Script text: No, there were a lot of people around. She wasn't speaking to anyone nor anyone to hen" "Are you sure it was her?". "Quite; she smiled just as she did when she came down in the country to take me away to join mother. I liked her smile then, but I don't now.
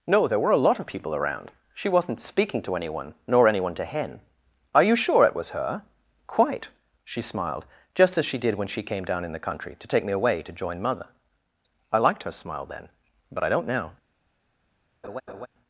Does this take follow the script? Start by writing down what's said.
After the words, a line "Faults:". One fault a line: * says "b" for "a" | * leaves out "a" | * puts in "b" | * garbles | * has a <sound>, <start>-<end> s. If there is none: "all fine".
No, there were a lot of people around. She wasn't speaking to anyone nor anyone to hen" "Are you sure it was her?". "Quite; she smiled just as she did when she came down in the country to take me away to join mother. I liked her smile then, but I don't now.
Faults:
* has a laugh, 15.0-15.5 s